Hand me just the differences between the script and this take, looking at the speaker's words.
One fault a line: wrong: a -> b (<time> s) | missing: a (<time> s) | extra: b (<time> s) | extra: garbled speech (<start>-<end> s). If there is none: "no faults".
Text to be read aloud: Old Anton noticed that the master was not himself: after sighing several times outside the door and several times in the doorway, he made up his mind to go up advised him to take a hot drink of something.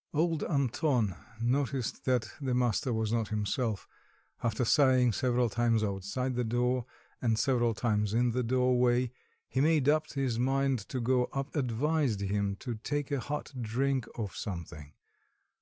no faults